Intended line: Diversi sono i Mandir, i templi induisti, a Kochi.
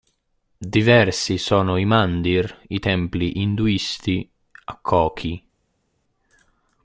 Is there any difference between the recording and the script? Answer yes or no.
no